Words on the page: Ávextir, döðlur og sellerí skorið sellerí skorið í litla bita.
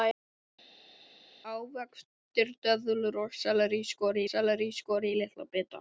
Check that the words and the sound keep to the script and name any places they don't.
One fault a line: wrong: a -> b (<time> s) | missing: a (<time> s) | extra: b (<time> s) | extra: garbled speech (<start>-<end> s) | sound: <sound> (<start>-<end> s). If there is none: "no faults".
no faults